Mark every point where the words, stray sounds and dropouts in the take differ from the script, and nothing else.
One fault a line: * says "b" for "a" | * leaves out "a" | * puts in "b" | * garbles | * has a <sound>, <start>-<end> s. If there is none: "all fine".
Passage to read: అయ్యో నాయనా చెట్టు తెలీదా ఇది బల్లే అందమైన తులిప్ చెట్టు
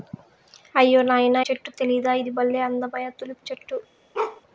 * has a bark, 4.1-4.4 s